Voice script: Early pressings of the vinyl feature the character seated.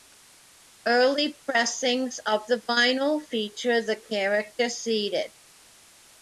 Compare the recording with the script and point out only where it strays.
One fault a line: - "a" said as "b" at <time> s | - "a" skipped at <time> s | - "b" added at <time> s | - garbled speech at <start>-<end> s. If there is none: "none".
none